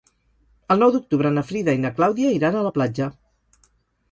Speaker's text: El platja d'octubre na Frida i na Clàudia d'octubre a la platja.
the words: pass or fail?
fail